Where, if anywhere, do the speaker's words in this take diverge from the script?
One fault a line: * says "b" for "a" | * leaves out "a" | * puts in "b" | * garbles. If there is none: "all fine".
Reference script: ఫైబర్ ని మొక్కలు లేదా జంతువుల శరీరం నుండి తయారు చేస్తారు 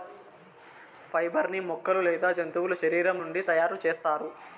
all fine